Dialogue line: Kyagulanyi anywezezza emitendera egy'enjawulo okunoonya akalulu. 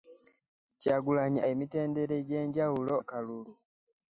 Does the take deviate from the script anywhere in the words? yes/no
yes